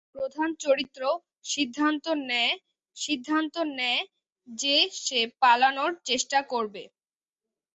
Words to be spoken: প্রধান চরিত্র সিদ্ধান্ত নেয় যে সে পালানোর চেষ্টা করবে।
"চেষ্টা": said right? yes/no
yes